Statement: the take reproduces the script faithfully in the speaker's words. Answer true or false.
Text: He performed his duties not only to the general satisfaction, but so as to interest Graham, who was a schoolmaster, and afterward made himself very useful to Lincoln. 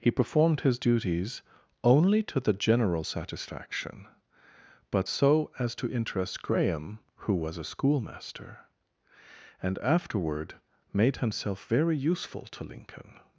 false